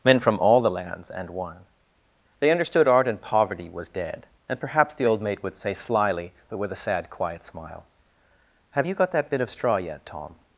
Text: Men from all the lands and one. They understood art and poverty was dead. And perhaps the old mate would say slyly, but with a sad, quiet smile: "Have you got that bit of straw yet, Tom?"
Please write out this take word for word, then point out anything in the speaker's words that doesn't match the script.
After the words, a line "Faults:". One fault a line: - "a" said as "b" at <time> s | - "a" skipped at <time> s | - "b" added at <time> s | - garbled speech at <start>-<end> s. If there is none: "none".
Men from all the lands and one. They understood art and poverty was dead. And perhaps the old mate would say slyly, but with a sad, quiet smile: "Have you got that bit of straw yet, Tom?"
Faults:
none